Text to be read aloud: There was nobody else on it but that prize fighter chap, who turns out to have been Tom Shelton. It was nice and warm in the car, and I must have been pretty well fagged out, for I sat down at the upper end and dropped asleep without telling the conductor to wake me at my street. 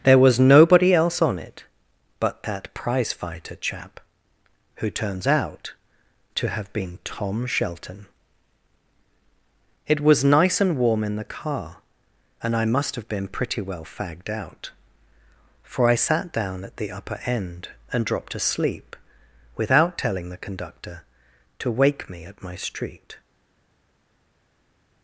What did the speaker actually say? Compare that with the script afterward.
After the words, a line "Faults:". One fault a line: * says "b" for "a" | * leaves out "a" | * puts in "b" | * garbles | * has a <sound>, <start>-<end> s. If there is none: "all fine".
There was nobody else on it but that prize fighter chap, who turns out to have been Tom Shelton. It was nice and warm in the car, and I must have been pretty well fagged out, for I sat down at the upper end and dropped asleep without telling the conductor to wake me at my street.
Faults:
all fine